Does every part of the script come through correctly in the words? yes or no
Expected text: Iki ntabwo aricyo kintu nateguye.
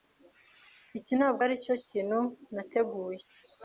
yes